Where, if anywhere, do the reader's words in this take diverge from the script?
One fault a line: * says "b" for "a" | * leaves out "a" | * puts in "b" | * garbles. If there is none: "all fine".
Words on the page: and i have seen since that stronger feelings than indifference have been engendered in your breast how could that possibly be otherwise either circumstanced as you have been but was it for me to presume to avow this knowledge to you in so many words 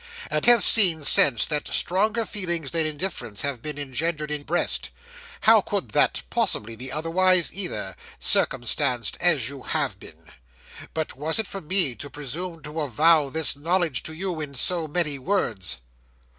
* leaves out "i"
* leaves out "your"